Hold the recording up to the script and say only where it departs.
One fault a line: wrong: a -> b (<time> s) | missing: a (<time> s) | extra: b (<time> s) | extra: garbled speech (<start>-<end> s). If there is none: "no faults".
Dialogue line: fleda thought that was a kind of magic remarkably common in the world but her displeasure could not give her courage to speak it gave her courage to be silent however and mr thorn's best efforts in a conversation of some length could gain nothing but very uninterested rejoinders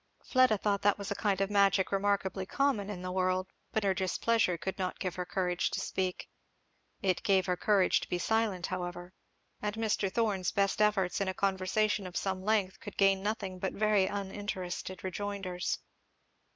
no faults